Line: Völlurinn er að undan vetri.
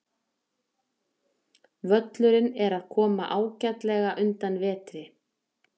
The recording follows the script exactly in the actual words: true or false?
false